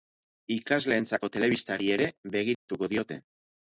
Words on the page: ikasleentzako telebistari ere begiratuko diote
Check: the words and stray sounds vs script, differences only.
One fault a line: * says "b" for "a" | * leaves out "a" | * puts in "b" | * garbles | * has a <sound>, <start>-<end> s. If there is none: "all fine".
* has a dropout, 2.5-2.7 s